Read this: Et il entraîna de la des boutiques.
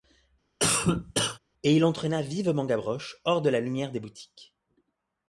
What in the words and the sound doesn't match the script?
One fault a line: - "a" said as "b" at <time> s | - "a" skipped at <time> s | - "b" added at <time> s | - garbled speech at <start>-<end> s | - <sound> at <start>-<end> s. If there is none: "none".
- cough at 0.6-1.4 s
- "vivement Gavroche hors" added at 2.2 s
- "lumière" added at 3.6 s